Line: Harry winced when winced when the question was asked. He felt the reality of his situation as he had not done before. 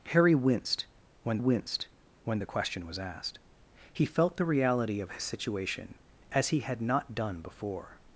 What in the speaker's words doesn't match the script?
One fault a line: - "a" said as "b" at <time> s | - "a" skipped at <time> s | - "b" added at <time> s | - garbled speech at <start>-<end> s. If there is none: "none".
none